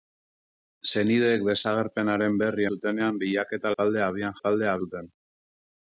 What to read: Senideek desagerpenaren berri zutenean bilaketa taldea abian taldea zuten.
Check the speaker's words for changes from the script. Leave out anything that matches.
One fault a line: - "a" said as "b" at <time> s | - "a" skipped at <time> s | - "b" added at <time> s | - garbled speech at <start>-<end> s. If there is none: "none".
none